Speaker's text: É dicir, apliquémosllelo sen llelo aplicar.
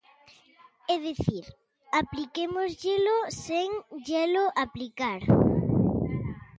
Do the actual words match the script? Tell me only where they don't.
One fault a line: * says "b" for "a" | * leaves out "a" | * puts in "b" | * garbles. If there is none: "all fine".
all fine